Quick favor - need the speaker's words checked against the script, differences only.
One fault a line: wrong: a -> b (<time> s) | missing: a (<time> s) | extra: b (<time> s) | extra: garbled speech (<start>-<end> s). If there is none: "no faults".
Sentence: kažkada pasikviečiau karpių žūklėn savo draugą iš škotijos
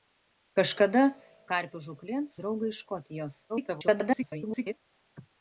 missing: pasikviečiau (1.0 s)
missing: savo (2.3 s)
extra: garbled speech (3.5-4.8 s)